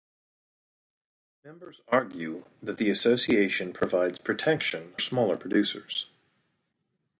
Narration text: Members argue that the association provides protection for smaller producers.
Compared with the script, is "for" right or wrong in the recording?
wrong